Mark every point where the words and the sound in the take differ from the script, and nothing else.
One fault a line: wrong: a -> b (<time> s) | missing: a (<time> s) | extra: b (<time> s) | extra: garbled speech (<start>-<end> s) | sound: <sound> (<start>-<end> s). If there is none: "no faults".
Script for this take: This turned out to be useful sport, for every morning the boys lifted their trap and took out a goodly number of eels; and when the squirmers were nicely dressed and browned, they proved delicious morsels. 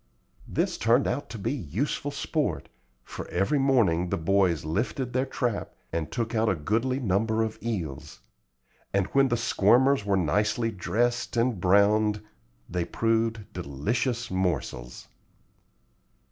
no faults